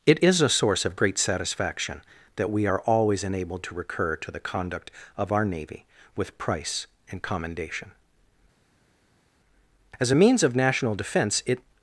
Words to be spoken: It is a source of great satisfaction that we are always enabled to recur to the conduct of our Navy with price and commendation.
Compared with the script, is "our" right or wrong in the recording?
right